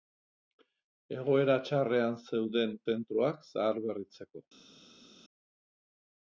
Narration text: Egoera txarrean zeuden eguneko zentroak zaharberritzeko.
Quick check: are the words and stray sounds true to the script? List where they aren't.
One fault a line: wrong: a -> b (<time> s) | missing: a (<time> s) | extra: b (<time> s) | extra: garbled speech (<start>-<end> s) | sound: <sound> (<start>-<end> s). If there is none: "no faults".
missing: eguneko (2.7 s)